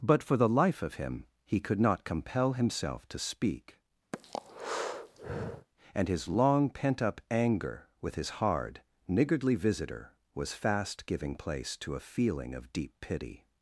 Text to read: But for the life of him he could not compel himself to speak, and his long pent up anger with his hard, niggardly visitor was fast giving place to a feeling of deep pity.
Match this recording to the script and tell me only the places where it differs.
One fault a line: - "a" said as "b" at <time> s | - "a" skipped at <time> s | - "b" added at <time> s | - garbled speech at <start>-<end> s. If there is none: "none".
none